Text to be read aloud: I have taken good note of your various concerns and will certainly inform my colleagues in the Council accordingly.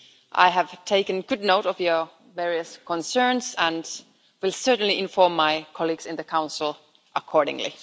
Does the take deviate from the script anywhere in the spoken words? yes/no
no